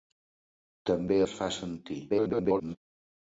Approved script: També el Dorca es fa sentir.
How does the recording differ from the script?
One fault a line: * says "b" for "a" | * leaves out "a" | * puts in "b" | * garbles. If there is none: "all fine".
* leaves out "el Dorca"
* garbles